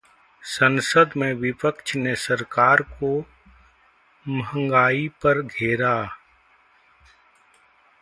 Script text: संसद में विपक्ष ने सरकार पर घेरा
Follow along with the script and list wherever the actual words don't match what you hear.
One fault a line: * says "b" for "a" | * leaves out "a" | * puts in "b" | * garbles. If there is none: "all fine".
* puts in "को महंगाई"